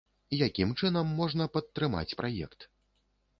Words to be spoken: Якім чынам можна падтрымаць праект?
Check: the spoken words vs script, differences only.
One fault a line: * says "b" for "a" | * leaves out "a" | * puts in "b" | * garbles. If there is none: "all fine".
all fine